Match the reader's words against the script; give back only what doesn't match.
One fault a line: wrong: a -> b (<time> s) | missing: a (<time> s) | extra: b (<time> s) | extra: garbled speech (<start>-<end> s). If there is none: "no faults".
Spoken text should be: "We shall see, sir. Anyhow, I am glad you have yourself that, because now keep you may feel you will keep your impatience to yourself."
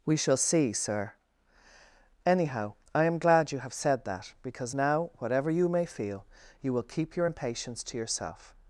wrong: yourself -> said (3.7 s)
wrong: keep -> whatever (5.2 s)